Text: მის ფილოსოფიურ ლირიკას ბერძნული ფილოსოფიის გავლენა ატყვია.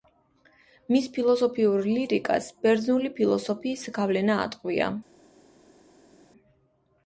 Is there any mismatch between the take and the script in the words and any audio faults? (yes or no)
no